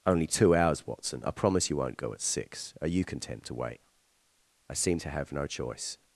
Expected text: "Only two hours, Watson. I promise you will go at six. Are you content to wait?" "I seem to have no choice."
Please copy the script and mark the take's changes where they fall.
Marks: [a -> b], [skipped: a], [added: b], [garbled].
"Only two hours, Watson. I promise you [will -> won't] go at six. Are you content to wait?" "I seem to have no choice."